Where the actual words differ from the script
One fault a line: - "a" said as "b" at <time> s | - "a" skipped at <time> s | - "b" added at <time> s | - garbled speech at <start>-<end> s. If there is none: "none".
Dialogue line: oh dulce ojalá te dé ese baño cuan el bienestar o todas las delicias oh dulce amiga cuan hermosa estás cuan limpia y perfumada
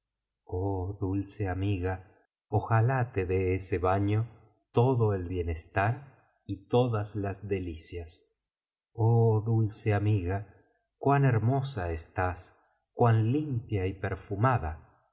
- "amiga" added at 1.5 s
- "cuan" said as "todo" at 4.7 s
- "o" said as "y" at 6.4 s